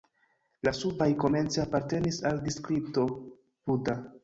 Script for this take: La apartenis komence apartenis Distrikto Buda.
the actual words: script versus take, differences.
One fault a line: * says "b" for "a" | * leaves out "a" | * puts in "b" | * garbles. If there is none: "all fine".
* says "subaj" for "apartenis"
* puts in "al"